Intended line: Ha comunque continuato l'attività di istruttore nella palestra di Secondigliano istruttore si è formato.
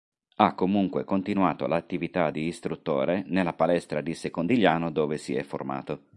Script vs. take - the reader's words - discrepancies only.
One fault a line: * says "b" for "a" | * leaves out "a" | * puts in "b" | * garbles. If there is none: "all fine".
* says "dove" for "istruttore"